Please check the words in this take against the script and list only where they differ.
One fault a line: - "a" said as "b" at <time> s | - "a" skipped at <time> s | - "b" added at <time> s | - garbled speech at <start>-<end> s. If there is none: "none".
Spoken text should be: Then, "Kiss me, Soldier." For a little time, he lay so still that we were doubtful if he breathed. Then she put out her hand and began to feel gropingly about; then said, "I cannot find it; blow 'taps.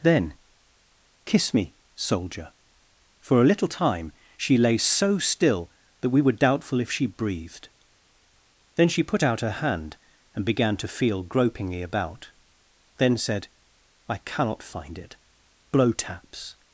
- "he" said as "she" at 4.3 s
- "he" said as "she" at 6.9 s